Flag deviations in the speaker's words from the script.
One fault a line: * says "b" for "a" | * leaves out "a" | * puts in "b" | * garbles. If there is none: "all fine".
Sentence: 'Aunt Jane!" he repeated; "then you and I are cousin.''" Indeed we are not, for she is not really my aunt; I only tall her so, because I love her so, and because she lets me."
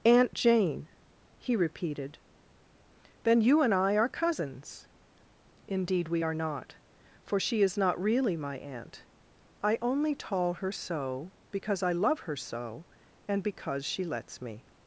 * says "cousins" for "cousin"